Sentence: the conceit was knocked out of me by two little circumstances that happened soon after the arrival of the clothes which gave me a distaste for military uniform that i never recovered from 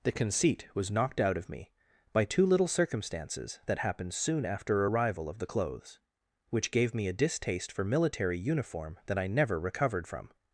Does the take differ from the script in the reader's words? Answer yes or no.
yes